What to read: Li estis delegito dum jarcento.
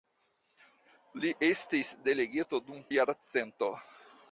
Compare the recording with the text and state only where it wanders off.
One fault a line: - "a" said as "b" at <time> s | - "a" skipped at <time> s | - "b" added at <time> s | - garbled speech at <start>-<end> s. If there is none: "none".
none